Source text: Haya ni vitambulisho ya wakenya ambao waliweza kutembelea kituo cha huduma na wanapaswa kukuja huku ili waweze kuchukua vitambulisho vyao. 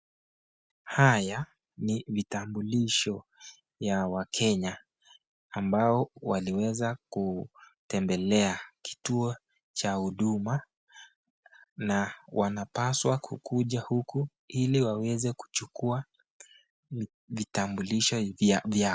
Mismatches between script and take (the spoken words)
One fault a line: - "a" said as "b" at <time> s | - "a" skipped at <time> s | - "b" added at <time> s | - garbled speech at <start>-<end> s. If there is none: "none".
none